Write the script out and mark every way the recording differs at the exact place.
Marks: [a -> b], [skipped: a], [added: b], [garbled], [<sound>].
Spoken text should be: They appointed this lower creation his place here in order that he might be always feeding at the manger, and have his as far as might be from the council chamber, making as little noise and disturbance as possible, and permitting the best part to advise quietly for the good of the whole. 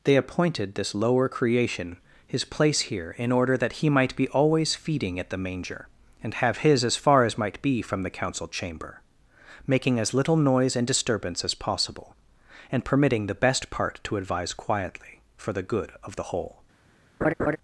They appointed this lower creation his place here in order that he might be always feeding at the manger, and have his as far as might be from the council chamber, making as little noise and disturbance as possible, and permitting the best part to advise quietly for the good of the whole. [laugh]